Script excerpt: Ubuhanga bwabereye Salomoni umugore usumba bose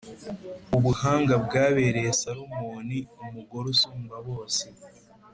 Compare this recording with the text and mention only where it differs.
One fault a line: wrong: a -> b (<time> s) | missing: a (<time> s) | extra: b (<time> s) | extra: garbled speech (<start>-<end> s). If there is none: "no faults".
no faults